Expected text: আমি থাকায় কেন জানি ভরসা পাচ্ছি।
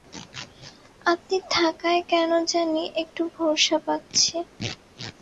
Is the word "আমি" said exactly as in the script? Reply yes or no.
no